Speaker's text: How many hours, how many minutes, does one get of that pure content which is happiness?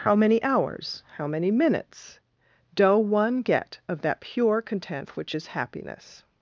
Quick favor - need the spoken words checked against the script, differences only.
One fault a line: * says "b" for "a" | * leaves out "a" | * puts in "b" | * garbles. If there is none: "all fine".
* says "doe" for "does"